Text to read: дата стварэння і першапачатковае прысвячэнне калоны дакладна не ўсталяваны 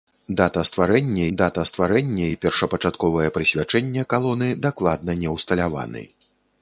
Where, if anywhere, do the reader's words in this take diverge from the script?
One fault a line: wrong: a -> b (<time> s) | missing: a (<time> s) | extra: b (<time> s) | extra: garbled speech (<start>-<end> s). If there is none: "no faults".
extra: дата стварэння (1.4 s)